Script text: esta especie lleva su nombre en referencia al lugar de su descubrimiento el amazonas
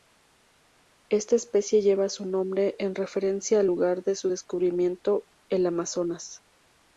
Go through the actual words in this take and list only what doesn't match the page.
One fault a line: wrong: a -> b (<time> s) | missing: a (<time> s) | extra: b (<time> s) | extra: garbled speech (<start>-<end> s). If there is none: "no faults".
no faults